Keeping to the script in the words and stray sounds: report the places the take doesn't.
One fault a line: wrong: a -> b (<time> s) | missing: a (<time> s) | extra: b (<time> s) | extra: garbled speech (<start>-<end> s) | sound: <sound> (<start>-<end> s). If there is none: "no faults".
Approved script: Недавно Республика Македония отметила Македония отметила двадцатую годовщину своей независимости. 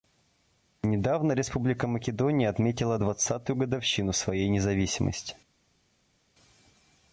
missing: Македония отметила (3.0 s)